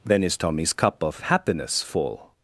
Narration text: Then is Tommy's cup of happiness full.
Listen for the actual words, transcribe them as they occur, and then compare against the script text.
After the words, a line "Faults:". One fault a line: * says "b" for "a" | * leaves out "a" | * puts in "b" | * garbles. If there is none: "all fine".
Then is Tommy's cup of happiness full.
Faults:
all fine